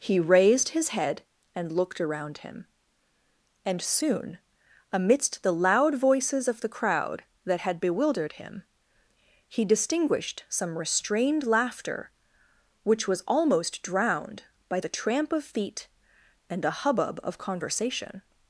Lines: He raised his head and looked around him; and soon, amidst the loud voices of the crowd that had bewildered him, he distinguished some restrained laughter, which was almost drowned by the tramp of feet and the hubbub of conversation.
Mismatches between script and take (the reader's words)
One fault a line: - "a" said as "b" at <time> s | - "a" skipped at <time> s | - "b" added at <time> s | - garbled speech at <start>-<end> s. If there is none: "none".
- "the" said as "a" at 16.7 s